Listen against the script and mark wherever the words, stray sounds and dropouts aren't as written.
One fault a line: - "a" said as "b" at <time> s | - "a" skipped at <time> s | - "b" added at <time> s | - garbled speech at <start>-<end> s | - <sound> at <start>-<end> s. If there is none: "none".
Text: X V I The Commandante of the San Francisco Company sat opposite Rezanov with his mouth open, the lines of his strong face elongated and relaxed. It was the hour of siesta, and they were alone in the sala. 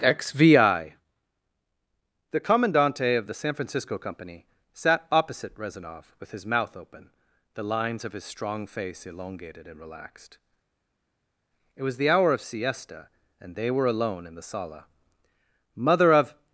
- "Mother of" added at 15.8 s